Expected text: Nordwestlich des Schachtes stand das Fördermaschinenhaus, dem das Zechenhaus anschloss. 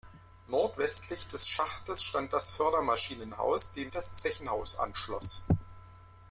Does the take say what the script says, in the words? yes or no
yes